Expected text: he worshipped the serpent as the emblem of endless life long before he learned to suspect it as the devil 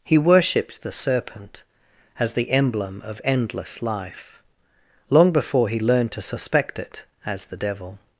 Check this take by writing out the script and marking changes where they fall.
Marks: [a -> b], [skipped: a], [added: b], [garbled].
he worshipped the serpent as the emblem of endless life long before he learned to suspect it as the devil